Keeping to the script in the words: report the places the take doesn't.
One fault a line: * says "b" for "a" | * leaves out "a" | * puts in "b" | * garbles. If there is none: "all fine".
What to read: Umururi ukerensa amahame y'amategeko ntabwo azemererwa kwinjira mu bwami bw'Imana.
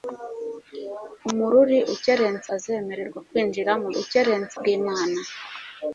* leaves out "amahame y'amategeko ntabwo"
* says "ukerensa" for "bwami"